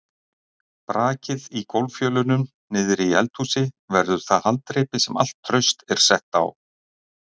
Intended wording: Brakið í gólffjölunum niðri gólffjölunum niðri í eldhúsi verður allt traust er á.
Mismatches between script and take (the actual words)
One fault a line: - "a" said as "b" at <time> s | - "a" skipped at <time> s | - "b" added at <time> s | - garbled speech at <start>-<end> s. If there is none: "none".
- "gólffjölunum niðri" skipped at 3.1 s
- "það haldreipi sem" added at 4.3 s
- "sett" added at 6.1 s